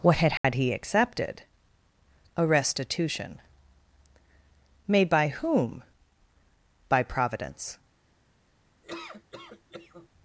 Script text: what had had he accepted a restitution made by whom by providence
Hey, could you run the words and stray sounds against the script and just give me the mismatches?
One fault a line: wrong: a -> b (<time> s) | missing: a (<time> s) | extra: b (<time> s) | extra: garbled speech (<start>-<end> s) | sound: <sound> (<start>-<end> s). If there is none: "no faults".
sound: dropout (0.4-0.4 s)
sound: laugh (8.8-10.1 s)